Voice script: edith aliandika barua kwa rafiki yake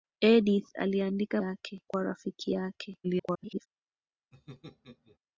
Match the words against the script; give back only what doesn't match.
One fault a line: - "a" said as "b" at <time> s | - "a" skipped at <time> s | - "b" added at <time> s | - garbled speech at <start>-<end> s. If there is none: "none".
- "barua" said as "yake" at 1.4 s
- garbled speech at 3.0-3.7 s